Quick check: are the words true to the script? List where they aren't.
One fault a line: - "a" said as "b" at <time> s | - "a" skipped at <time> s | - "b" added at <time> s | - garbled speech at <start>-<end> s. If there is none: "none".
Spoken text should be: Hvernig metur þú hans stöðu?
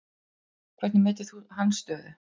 none